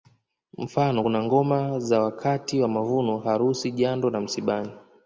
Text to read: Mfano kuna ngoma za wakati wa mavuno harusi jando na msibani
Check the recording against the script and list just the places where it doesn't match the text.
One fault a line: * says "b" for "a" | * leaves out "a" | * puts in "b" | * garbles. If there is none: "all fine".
all fine